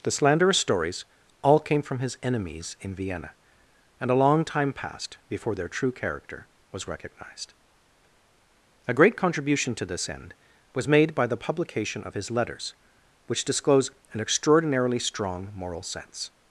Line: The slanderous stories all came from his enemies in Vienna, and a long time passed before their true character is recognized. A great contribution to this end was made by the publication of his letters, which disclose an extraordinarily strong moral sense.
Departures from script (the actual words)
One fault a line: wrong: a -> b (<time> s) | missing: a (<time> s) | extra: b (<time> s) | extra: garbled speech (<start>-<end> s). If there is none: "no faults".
wrong: is -> was (6.7 s)